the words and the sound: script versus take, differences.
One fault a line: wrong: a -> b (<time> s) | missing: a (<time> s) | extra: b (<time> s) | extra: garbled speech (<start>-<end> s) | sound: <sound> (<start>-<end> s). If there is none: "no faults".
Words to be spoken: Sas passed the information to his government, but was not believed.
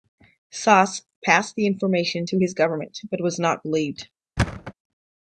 sound: thud (4.4-4.7 s)